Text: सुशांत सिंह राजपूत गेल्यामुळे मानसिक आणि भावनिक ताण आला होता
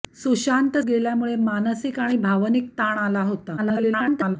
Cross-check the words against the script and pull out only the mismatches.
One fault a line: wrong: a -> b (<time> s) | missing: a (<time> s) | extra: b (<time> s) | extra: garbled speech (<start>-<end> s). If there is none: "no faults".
missing: सिंह राजपूत (0.8 s)
extra: garbled speech (3.6-4.4 s)